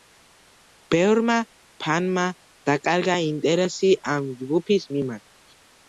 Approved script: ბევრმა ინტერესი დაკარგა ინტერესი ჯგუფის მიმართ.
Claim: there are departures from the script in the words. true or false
true